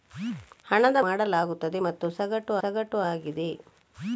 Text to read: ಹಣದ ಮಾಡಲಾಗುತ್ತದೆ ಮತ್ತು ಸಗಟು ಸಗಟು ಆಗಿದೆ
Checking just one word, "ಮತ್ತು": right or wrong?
right